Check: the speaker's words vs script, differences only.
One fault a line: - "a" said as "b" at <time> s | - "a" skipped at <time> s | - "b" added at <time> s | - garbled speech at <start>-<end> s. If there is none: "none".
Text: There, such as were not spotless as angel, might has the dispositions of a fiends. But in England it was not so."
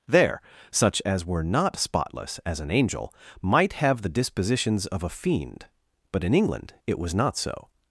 - "an" added at 2.6 s
- "has" said as "have" at 3.7 s
- "fiends" said as "fiend" at 5.1 s